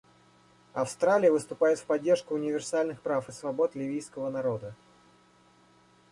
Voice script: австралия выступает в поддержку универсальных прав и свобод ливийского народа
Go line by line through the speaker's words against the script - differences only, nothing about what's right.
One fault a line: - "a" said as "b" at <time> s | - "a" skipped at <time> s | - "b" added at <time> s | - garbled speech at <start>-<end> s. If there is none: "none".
none